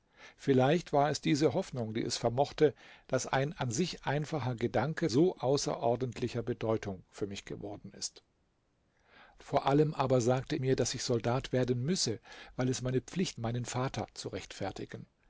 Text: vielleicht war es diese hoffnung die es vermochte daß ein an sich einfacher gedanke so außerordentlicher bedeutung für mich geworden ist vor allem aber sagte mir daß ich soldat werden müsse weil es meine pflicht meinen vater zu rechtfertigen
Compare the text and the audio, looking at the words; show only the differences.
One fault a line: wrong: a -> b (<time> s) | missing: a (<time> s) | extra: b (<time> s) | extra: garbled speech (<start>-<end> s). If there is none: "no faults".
no faults